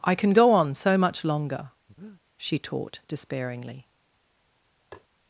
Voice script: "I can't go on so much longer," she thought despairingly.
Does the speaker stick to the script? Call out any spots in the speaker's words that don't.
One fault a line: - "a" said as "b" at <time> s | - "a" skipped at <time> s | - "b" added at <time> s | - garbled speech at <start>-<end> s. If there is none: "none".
- "can't" said as "can" at 0.1 s
- "thought" said as "taught" at 2.6 s